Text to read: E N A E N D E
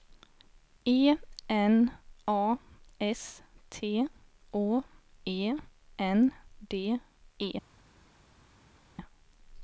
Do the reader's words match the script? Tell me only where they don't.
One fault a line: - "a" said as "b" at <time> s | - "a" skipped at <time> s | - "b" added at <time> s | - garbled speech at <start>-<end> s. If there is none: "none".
- "S T Å" added at 3.0 s